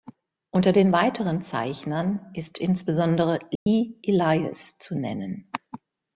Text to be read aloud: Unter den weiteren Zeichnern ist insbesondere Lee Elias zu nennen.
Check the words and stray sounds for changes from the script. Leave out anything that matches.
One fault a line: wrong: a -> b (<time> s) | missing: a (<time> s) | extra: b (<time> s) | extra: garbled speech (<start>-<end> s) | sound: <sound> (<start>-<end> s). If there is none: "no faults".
sound: dropout (3.6-3.7 s)